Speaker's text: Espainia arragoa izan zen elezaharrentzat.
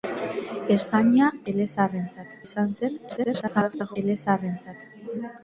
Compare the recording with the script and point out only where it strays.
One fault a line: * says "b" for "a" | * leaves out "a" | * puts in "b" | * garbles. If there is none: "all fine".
* says "elezaharrentzat" for "arragoa"
* garbles